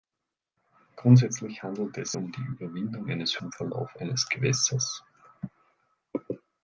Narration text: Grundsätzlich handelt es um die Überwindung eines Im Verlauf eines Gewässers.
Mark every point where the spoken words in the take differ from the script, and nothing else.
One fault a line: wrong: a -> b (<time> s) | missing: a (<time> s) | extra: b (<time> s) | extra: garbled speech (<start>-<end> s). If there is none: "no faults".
no faults